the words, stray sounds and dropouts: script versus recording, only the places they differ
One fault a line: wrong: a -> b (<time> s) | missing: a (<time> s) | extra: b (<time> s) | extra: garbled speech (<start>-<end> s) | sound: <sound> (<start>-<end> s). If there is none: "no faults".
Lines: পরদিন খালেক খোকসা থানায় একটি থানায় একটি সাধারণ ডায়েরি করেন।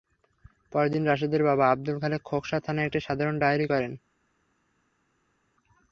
extra: রাশেদের বাবা আবদুল (1.1 s)
missing: থানায় একটি (3.0 s)